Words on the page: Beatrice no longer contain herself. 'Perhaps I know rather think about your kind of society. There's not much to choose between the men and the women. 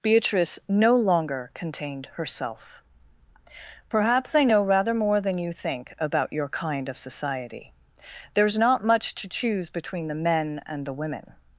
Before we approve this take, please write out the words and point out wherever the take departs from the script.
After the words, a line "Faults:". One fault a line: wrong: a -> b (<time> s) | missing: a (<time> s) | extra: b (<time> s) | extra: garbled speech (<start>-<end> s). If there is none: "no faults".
Beatrice no longer contained herself. 'Perhaps I know rather more than you think about your kind of society. There's not much to choose between the men and the women.
Faults:
wrong: contain -> contained (1.5 s)
extra: more than you (5.0 s)